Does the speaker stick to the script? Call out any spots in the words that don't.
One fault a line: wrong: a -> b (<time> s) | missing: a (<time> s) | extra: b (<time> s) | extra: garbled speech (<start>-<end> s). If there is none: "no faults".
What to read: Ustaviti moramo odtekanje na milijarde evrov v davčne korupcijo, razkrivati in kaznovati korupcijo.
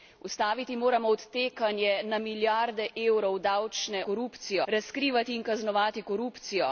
no faults